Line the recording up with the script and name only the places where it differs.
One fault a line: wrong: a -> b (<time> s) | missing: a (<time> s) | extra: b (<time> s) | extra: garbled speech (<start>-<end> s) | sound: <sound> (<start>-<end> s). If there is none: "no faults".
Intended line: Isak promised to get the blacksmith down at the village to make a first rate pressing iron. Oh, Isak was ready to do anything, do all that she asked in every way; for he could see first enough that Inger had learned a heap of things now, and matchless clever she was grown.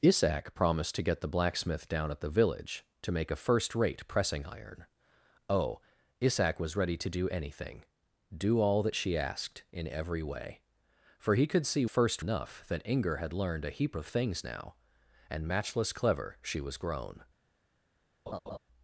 sound: laugh (18.3-18.6 s)